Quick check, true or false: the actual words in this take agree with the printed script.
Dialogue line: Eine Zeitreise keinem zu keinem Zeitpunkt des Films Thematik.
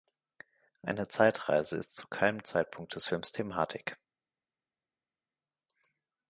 false